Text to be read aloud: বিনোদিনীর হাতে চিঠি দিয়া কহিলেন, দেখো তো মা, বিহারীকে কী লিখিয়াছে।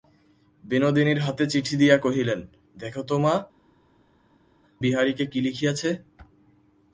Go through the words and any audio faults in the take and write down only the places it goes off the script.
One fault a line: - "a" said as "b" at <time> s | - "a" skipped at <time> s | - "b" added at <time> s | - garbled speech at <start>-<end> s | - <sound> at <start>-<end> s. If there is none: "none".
none